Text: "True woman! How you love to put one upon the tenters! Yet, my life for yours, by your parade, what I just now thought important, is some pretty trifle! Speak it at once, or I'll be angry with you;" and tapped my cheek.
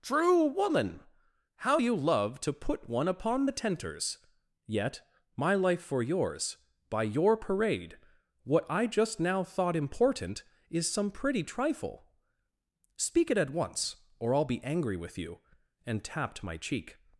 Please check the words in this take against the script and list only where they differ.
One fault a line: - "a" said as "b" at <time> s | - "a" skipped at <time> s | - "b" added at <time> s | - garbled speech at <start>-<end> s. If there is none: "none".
none